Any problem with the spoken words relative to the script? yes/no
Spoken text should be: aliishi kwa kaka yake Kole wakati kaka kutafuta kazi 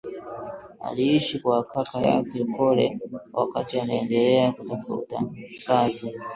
yes